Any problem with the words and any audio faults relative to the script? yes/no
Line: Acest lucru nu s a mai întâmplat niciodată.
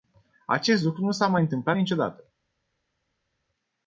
no